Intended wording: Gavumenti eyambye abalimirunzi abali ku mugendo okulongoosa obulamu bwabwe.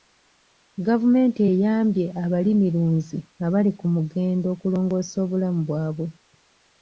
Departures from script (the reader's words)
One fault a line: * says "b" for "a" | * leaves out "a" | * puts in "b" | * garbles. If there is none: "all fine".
all fine